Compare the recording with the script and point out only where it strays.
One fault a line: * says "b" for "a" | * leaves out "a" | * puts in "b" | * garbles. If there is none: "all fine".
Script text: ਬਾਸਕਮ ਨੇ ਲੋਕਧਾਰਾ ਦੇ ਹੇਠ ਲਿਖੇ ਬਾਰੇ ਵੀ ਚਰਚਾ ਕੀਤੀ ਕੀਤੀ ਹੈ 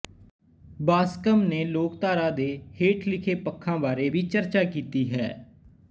* puts in "ਪੱਖਾਂ"
* leaves out "ਕੀਤੀ"